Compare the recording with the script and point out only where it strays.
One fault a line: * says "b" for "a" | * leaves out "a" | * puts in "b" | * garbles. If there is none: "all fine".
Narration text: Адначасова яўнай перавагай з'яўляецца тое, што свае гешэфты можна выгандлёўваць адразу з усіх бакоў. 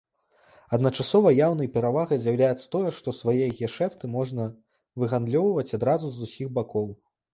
all fine